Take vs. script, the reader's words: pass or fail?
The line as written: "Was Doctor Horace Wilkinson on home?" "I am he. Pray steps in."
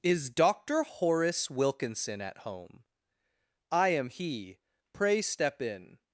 fail